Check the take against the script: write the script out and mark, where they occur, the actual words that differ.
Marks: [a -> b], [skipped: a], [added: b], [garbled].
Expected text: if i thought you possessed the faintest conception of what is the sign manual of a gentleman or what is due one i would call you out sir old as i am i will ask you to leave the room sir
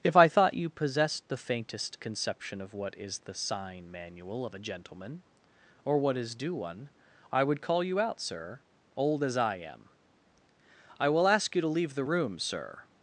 if i thought you possessed the faintest conception of what is the sign manual of a gentleman or what is due one i would call you out sir old as i am i will ask you to leave the room sir